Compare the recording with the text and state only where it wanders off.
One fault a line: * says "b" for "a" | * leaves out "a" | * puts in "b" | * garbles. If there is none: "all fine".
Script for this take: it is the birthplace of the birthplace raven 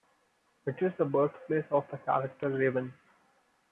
* says "character" for "birthplace"